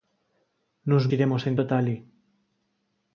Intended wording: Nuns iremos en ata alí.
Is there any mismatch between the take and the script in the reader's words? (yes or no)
no